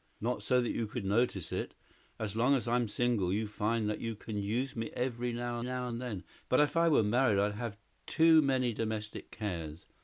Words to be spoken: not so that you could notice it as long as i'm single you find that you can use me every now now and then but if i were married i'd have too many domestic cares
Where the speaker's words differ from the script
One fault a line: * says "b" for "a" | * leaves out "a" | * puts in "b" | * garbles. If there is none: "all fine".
all fine